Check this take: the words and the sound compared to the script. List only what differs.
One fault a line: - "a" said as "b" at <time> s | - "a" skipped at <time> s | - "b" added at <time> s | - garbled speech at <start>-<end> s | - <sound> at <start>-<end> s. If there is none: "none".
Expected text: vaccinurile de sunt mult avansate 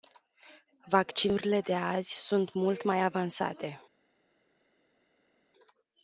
- "azi" added at 1.7 s
- "mai" added at 2.8 s